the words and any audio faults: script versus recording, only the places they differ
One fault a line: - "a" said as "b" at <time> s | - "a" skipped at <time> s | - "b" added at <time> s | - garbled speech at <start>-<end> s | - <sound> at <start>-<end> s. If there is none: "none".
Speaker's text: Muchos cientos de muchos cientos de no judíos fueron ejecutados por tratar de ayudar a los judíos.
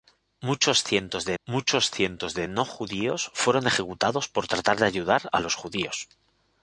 none